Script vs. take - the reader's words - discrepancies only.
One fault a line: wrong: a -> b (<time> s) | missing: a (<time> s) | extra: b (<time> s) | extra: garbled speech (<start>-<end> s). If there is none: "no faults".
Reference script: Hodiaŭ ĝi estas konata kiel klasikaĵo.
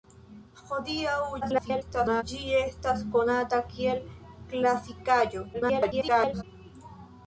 extra: garbled speech (1.4-2.2 s)
extra: garbled speech (5.5-6.4 s)